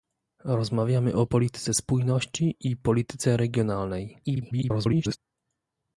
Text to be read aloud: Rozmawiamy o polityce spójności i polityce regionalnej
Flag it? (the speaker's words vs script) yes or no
yes